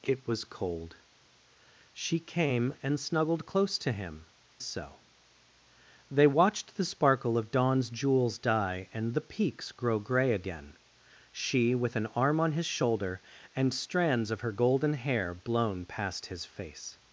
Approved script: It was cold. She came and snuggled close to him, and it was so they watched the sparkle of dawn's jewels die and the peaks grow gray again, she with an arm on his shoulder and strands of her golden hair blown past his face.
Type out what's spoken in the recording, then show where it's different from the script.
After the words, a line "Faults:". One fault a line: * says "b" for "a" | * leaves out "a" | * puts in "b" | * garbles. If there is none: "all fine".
It was cold. She came and snuggled close to him, so they watched the sparkle of dawn's jewels die and the peaks grow gray again, she with an arm on his shoulder and strands of her golden hair blown past his face.
Faults:
* leaves out "and it was"